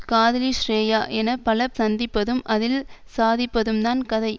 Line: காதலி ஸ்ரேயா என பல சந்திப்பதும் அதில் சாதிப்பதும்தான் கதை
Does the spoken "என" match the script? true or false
true